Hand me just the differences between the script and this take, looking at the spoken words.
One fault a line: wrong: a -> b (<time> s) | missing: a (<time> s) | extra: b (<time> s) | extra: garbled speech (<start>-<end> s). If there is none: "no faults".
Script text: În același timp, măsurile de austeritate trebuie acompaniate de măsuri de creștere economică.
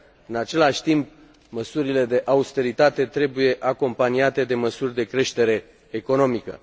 no faults